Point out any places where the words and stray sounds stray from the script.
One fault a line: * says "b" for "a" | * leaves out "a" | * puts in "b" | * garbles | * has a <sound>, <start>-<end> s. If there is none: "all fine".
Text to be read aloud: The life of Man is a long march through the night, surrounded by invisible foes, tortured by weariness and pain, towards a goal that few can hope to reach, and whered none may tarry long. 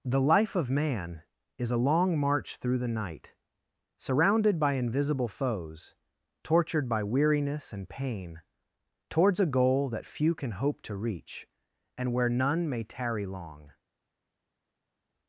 * says "where" for "whered"